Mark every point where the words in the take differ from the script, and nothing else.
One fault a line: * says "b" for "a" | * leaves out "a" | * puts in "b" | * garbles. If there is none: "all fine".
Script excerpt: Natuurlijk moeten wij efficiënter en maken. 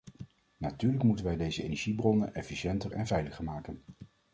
* puts in "deze energiebronnen"
* puts in "veiliger"